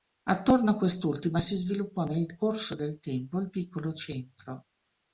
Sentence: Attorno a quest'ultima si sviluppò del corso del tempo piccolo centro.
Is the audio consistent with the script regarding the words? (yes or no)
no